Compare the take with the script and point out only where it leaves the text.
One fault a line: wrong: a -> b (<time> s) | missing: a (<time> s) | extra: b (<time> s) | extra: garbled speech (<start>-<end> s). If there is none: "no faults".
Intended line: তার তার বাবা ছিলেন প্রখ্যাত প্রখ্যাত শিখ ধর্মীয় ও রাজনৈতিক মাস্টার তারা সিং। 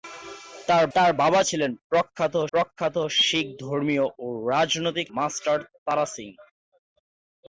no faults